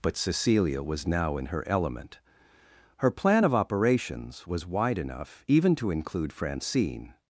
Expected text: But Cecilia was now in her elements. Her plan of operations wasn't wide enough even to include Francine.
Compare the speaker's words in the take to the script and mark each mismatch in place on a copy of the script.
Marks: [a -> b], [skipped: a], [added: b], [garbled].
But Cecilia was now in her [elements. -> element] Her plan of operations [wasn't -> was] wide enough even to include Francine.